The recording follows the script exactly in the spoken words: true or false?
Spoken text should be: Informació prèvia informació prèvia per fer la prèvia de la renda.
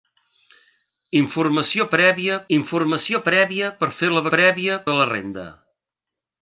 true